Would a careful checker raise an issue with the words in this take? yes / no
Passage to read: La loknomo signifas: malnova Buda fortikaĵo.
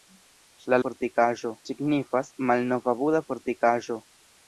yes